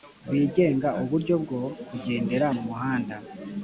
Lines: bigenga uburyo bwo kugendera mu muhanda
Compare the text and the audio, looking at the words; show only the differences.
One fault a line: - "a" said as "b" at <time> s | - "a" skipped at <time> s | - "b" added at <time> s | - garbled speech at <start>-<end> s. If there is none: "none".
none